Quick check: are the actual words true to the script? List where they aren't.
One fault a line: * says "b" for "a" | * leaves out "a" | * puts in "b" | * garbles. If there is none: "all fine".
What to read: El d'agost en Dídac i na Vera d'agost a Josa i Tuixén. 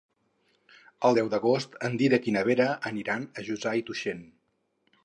* puts in "deu"
* says "aniran" for "d'agost"